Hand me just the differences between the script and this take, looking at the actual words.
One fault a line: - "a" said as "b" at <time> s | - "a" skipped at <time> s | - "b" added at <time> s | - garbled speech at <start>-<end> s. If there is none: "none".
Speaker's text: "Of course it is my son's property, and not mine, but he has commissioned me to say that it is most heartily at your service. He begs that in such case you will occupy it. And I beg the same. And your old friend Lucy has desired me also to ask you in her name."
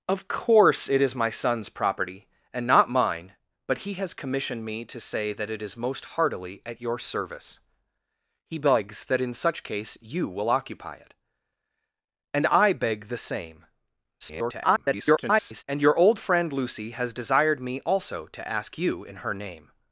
- garbled speech at 14.2-15.6 s